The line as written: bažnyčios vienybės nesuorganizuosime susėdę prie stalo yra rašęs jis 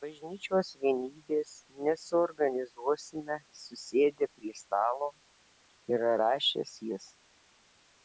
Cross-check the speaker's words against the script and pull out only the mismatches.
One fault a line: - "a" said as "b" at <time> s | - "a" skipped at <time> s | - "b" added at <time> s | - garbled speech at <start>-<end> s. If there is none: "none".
none